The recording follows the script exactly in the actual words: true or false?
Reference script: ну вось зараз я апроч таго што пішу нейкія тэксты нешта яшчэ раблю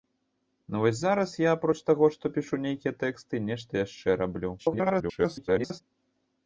false